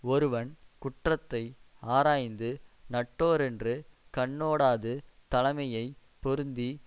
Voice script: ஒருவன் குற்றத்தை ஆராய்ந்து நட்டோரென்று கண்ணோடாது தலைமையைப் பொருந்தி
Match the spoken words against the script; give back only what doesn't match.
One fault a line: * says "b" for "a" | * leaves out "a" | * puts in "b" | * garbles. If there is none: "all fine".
all fine